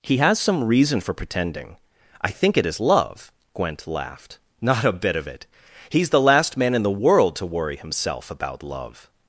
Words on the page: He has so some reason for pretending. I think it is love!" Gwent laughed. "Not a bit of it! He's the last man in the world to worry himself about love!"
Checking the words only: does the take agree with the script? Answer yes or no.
no